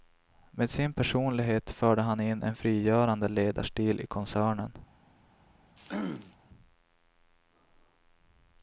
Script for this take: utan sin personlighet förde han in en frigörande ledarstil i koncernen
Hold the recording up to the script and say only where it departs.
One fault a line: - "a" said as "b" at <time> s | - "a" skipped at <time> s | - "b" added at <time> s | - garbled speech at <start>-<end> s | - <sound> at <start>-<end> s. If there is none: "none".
- "utan" said as "med" at 0.5 s
- throat clearing at 5.8-6.4 s